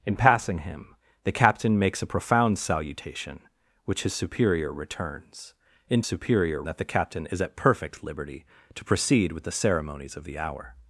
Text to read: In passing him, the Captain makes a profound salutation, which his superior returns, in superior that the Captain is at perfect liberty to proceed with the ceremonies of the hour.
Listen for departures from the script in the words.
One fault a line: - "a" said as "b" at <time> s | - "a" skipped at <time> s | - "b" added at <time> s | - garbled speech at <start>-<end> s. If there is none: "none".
none